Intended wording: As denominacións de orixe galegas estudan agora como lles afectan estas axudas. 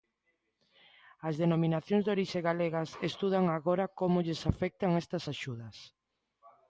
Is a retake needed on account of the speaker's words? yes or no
no